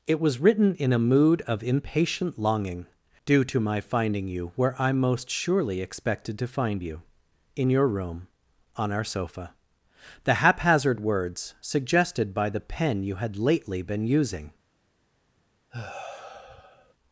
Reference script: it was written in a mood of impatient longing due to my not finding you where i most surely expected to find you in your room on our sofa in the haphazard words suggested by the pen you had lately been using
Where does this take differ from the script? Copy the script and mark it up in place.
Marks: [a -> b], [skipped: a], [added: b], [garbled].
it was written in a mood of impatient longing due to my [skipped: not] finding you where i most surely expected to find you in your room on our sofa [skipped: in] the haphazard words suggested by the pen you had lately been using